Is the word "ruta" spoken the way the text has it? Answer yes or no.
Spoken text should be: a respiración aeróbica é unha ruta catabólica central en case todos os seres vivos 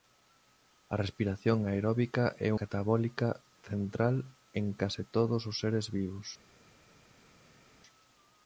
no